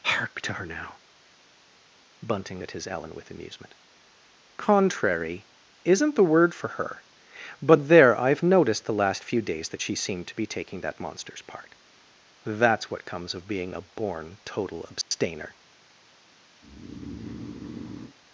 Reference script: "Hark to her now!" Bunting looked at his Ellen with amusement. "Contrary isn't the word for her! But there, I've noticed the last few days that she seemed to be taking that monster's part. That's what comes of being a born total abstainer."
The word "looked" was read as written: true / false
false